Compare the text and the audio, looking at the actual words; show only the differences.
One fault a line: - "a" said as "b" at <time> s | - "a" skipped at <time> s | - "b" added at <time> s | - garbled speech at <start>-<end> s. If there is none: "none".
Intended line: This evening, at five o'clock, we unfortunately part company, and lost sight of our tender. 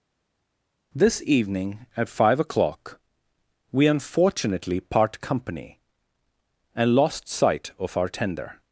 none